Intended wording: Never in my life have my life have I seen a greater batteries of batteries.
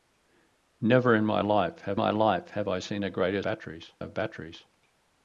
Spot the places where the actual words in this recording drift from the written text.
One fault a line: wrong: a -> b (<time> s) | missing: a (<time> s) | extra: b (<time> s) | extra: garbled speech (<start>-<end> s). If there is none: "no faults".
no faults